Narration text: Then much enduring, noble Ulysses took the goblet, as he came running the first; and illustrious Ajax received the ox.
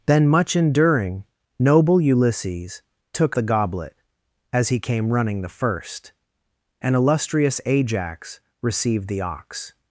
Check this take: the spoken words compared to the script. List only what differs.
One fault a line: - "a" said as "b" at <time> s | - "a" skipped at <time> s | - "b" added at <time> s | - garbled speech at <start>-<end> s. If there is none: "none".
none